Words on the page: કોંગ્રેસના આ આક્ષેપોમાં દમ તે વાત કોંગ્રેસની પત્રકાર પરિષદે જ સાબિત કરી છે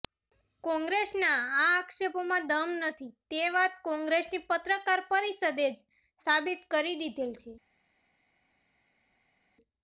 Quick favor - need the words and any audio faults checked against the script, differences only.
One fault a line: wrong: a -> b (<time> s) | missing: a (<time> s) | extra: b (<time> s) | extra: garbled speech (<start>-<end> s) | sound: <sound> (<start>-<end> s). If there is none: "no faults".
extra: નથી (2.8 s)
extra: દીધેલ (7.0 s)